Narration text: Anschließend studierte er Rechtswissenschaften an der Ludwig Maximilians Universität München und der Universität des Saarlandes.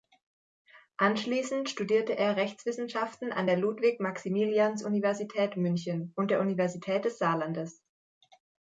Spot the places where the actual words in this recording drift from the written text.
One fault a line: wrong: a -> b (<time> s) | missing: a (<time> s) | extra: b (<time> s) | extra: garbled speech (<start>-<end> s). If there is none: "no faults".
no faults